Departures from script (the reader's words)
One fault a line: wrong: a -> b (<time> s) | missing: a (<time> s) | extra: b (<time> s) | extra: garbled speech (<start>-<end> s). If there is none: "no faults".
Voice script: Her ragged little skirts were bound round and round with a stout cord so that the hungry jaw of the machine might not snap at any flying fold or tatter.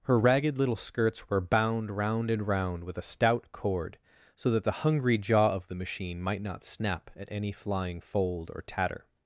no faults